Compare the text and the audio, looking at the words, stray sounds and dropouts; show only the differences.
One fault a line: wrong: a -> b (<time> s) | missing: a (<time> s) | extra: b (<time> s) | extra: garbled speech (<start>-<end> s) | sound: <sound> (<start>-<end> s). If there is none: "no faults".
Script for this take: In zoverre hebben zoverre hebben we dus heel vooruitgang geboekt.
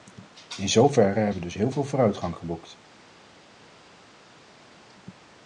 missing: zoverre hebben (1.4 s)
extra: veel (1.7 s)